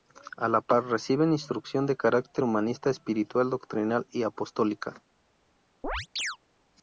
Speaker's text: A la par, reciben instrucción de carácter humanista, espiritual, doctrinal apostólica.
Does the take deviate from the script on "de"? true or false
false